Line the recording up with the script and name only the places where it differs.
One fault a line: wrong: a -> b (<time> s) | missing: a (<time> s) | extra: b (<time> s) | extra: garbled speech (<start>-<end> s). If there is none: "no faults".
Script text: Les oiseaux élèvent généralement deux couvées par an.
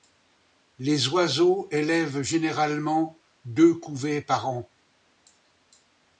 no faults